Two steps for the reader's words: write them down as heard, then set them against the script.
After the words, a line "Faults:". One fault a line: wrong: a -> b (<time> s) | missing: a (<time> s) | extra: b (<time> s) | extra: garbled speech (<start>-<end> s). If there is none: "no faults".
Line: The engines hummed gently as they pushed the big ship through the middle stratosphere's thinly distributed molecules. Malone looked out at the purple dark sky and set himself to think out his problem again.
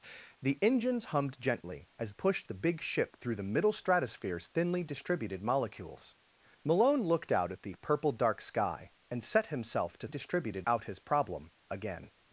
The engines hummed gently as pushed the big ship through the middle stratosphere's thinly distributed molecules. Malone looked out at the purple dark sky and set himself to distributed out his problem again.
Faults:
missing: they (2.1 s)
wrong: think -> distributed (10.1 s)